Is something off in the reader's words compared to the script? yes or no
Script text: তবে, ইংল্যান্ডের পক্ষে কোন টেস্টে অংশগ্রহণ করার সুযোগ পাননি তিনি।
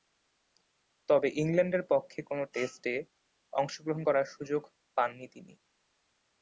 no